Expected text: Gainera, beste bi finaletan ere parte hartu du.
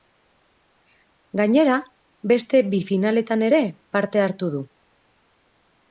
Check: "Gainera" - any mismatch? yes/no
no